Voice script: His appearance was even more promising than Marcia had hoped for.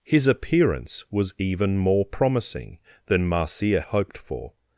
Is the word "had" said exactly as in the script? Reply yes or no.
no